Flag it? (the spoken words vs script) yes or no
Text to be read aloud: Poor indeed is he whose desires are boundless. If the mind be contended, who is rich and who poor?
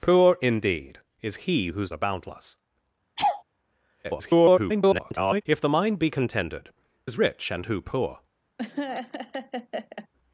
yes